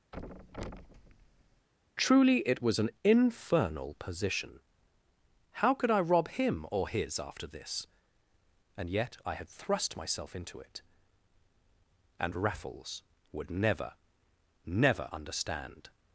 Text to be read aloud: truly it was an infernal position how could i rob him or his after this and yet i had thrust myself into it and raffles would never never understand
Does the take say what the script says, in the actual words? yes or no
yes